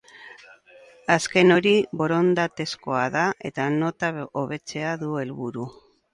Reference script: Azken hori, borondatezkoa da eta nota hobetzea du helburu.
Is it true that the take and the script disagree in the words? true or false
false